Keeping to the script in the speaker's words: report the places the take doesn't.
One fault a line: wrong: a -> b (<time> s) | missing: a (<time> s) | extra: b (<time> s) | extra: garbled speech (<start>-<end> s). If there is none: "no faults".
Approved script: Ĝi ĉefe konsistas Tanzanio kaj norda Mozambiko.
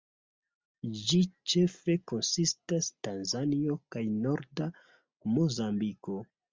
no faults